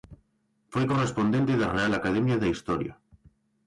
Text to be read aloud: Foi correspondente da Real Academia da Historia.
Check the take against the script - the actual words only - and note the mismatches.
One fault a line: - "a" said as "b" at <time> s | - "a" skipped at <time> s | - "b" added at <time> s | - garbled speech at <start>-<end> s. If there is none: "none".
none